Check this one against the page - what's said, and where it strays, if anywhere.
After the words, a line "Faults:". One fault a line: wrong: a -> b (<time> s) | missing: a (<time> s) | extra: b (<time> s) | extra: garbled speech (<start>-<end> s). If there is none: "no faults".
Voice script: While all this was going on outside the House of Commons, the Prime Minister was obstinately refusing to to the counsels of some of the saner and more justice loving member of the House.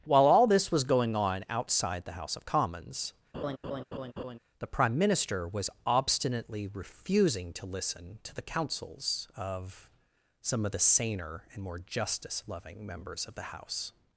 While all this was going on outside the House of Commons, the Prime Minister was obstinately refusing to listen to the counsels of some of the saner and more justice loving members of the House.
Faults:
extra: listen (7.7 s)
wrong: member -> members (12.9 s)